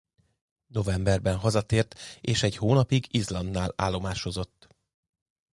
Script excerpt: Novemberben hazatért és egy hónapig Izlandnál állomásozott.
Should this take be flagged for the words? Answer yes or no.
no